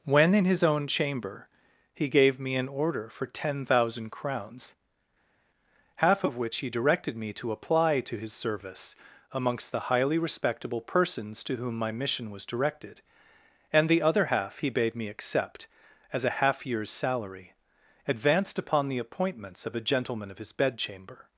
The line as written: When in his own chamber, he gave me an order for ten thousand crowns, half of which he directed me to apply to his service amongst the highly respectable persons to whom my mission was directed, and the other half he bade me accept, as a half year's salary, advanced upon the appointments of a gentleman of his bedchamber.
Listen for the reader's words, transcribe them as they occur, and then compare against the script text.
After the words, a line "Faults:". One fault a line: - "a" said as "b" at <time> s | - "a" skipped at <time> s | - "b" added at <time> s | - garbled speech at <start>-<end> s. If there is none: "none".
When in his own chamber, he gave me an order for ten thousand crowns, half of which he directed me to apply to his service amongst the highly respectable persons to whom my mission was directed, and the other half he bade me accept, as a half year's salary, advanced upon the appointments of a gentleman of his bedchamber.
Faults:
none